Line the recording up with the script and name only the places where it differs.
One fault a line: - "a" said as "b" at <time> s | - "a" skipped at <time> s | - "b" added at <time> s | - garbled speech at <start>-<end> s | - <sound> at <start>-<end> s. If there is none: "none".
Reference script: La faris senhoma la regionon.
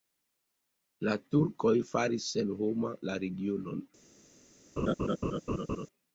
- "turkoj" added at 1.4 s
- laugh at 4.8-5.9 s